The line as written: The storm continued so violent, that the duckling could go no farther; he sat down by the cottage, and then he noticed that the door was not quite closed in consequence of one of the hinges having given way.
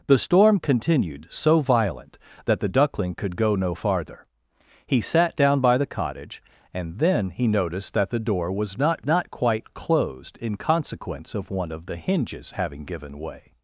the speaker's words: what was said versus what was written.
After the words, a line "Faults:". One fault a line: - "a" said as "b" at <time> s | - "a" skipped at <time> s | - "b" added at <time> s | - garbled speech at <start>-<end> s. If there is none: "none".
The storm continued so violent, that the duckling could go no farther; he sat down by the cottage, and then he noticed that the door was not not quite closed in consequence of one of the hinges having given way.
Faults:
- "not" added at 9.1 s